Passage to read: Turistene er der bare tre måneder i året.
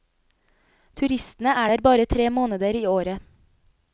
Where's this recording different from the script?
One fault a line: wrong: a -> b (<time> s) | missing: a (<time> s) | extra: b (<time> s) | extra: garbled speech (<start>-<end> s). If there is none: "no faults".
no faults